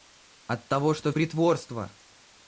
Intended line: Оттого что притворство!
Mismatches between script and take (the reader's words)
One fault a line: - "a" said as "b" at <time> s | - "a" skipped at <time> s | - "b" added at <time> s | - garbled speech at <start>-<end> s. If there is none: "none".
none